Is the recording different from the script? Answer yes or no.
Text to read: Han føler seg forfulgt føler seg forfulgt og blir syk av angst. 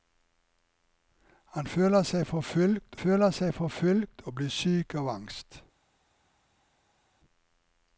no